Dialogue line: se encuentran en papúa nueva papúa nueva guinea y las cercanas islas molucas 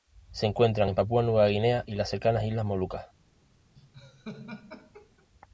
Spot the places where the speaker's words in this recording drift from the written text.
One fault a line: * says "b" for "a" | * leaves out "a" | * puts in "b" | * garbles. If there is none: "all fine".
* leaves out "papúa nueva"